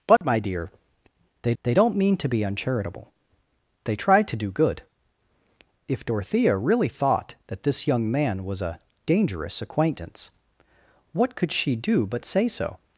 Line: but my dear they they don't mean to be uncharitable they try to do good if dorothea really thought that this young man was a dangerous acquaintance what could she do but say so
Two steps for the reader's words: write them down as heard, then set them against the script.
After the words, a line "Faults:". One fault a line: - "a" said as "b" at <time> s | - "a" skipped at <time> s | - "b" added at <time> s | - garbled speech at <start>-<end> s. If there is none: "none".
but my dear they they don't mean to be uncharitable they try to do good if dorothea really thought that this young man was a dangerous acquaintance what could she do but say so
Faults:
none